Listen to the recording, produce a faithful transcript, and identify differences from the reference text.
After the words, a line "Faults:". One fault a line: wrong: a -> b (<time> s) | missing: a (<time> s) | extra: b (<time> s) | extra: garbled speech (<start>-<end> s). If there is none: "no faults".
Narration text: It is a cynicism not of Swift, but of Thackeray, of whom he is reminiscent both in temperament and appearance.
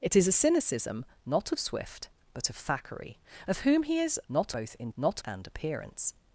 It is a cynicism not of Swift, but of Thackeray, of whom he is not both in not and appearance.
Faults:
wrong: reminiscent -> not (4.3 s)
wrong: temperament -> not (5.0 s)